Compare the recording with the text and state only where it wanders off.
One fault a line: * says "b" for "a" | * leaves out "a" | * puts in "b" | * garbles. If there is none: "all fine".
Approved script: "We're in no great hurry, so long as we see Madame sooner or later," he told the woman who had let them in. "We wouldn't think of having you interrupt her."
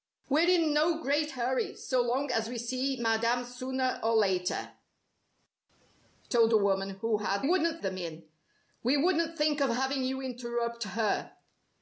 * leaves out "he"
* says "wouldn't" for "let"